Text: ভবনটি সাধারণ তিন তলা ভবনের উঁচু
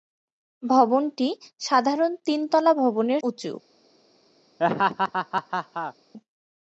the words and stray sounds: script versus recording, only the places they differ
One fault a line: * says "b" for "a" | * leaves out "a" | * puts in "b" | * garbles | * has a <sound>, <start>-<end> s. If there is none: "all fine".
* has a laugh, 4.6-5.9 s